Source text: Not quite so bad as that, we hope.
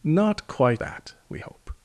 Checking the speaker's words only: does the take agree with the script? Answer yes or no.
no